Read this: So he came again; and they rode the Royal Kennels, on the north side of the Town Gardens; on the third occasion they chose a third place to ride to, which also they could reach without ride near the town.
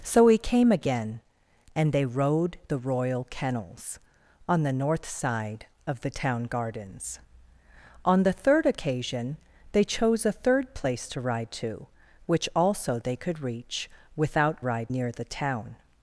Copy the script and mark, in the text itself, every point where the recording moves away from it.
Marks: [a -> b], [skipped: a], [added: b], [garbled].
So he came again; and they rode the Royal Kennels, on the north side of the Town Gardens; on the third occasion they chose a third place to ride to, which also they could reach without ride near the town.